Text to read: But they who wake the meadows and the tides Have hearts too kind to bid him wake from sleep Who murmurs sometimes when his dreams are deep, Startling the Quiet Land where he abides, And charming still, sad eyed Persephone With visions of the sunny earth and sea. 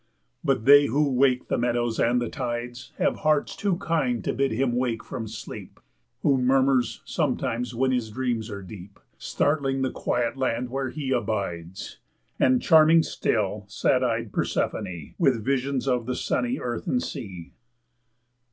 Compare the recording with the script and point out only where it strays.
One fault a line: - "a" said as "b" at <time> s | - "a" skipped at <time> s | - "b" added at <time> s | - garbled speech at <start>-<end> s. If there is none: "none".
none